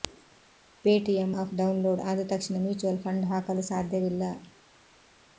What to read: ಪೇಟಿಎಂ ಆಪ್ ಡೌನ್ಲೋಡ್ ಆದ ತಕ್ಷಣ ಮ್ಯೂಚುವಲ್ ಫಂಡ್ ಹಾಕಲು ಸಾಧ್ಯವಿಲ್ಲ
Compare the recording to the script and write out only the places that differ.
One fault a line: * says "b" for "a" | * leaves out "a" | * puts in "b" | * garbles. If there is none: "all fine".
all fine